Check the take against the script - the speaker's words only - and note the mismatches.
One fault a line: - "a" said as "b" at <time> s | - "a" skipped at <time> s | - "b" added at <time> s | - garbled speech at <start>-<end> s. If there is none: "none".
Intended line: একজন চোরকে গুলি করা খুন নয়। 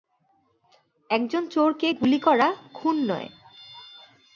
none